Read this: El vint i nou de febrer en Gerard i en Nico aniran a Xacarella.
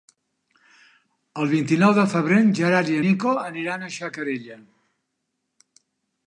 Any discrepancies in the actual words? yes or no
yes